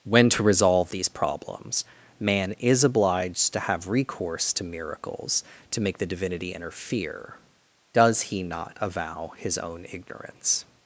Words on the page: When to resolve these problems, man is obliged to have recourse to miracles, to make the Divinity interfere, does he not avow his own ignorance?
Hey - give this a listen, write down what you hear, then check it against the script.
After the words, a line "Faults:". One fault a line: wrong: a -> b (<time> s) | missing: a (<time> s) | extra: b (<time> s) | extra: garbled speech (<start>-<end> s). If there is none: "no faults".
When to resolve these problems, man is obliged to have recourse to miracles, to make the Divinity interfere, does he not avow his own ignorance?
Faults:
no faults